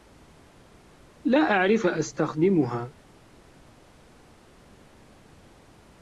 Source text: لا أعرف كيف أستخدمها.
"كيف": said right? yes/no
no